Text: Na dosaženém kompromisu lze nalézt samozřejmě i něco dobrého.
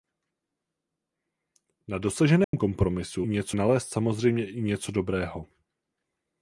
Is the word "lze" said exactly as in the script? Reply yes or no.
no